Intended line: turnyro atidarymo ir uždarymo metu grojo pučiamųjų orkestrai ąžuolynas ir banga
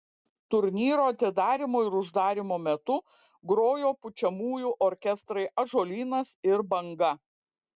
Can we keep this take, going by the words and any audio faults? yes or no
yes